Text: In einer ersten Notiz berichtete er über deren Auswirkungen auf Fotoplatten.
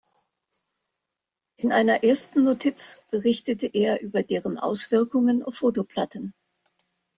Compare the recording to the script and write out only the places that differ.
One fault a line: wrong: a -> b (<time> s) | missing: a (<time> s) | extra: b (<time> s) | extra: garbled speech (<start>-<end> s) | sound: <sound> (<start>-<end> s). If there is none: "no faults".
no faults